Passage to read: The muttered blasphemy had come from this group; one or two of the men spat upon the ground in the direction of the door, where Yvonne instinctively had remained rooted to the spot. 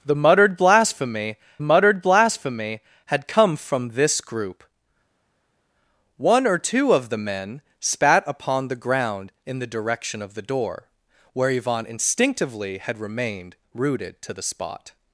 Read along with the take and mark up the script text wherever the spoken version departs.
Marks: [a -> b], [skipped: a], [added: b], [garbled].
The muttered blasphemy [added: muttered blasphemy] had come from this group; one or two of the men spat upon the ground in the direction of the door, where Yvonne instinctively had remained rooted to the spot.